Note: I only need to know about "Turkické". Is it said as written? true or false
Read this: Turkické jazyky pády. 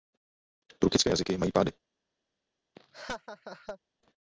true